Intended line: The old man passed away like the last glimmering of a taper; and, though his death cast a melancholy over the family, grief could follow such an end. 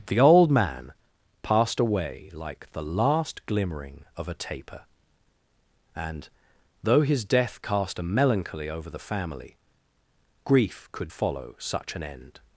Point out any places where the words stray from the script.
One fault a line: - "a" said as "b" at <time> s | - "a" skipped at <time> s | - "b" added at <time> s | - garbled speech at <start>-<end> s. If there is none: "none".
none